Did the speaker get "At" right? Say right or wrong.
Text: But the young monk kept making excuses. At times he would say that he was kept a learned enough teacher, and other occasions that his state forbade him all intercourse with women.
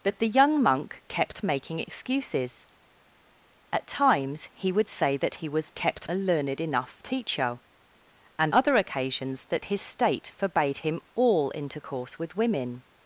right